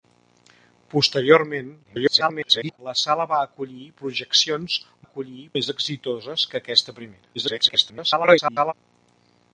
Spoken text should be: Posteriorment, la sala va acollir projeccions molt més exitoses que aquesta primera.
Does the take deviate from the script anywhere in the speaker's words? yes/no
yes